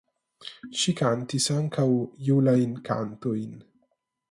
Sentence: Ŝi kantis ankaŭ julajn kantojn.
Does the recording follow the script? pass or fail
pass